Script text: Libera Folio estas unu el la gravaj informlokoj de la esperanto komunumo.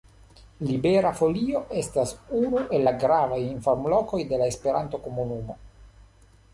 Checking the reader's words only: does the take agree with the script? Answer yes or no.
yes